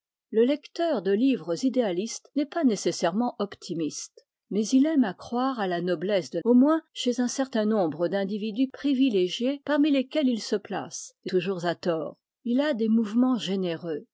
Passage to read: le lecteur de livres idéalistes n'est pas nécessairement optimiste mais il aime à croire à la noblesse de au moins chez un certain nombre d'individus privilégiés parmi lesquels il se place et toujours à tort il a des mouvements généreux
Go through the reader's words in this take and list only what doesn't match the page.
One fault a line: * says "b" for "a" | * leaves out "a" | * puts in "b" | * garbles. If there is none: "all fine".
all fine